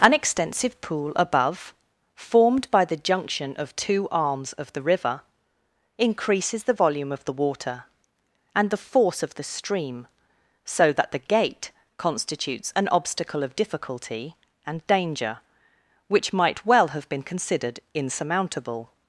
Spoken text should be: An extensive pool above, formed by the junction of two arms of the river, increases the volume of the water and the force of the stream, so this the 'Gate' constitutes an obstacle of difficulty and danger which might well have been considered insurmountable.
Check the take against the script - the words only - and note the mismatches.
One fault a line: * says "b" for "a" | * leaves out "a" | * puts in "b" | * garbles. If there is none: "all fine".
* says "that" for "this"